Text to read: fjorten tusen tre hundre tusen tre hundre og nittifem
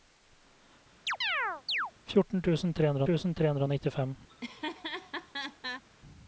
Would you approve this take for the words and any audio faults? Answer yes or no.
no